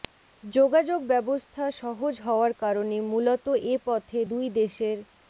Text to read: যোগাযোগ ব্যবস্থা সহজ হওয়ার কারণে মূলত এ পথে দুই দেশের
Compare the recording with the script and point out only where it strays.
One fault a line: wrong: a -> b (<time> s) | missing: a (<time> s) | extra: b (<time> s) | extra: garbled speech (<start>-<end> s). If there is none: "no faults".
no faults